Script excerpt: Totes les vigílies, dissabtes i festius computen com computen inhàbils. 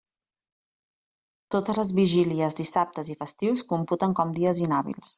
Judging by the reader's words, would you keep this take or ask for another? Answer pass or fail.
fail